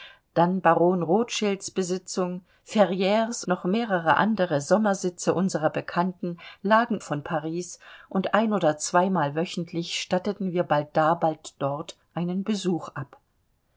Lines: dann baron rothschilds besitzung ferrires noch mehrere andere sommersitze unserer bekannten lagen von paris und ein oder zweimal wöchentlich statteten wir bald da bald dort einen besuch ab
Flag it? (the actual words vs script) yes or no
no